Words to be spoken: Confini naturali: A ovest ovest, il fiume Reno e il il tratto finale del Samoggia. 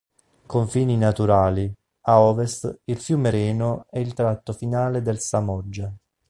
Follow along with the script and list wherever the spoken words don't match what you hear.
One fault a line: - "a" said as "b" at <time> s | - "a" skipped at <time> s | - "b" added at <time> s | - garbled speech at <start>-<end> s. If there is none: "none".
- "ovest" skipped at 2.8 s
- "il" skipped at 4.1 s